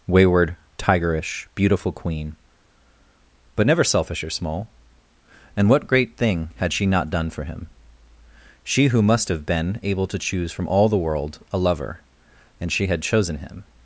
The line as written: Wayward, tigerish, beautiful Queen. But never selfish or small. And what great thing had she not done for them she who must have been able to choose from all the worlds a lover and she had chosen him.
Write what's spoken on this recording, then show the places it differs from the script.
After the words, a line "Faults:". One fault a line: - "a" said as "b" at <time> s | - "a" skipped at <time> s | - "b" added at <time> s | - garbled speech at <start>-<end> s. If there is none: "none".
Wayward, tigerish, beautiful Queen. But never selfish or small. And what great thing had she not done for him she who must have been able to choose from all the world a lover and she had chosen him.
Faults:
- "them" said as "him" at 7.4 s
- "worlds" said as "world" at 11.0 s